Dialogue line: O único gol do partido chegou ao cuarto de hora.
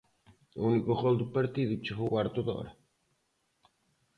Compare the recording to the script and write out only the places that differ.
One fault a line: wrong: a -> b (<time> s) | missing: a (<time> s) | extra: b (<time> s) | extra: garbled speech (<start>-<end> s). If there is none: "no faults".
missing: ao (2.1 s)